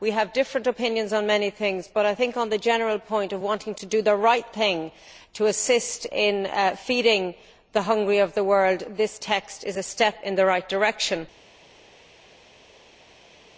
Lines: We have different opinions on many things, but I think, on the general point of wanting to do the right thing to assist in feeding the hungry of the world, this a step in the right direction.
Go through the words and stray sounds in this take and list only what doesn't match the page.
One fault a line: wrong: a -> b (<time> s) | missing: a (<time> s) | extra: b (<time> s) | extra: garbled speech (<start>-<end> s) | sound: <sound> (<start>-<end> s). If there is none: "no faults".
extra: text is (9.2 s)